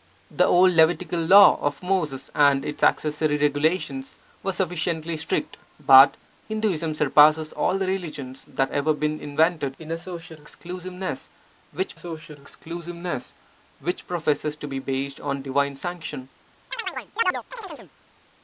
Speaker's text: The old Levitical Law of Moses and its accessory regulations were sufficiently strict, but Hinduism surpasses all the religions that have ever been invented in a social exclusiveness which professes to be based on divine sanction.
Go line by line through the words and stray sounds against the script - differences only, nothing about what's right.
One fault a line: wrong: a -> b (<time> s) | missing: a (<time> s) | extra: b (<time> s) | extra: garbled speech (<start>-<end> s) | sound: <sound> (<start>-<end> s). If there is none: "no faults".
missing: have (8.7 s)
extra: social exclusiveness which (11.9 s)
sound: chirp (16.7-17.9 s)